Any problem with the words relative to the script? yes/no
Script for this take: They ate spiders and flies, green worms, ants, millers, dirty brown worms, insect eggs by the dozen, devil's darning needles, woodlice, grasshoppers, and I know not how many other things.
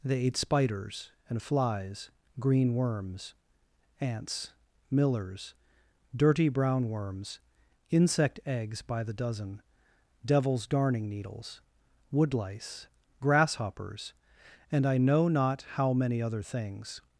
no